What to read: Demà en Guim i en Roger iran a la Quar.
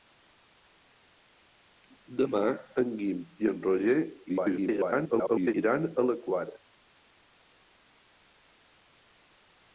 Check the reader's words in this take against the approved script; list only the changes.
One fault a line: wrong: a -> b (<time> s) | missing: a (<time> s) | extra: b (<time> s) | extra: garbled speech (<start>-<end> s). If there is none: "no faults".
extra: garbled speech (4.3-5.5 s)